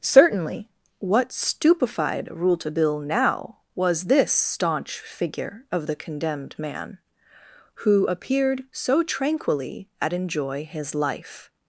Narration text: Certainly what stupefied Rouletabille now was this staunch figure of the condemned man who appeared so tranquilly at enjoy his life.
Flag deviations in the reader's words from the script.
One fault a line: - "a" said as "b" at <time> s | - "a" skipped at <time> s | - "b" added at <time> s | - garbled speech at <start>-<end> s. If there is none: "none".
none